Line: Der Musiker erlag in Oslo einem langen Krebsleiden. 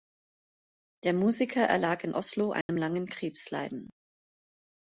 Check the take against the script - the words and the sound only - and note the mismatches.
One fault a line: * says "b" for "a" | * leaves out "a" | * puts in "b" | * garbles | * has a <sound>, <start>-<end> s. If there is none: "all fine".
* has a dropout, 2.6-2.7 s